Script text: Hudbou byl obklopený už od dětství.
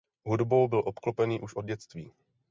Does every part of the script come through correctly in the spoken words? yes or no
yes